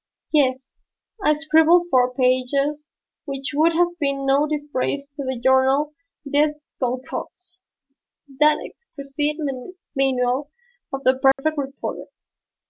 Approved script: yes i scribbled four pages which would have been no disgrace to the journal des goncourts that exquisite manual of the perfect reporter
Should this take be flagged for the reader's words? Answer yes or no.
no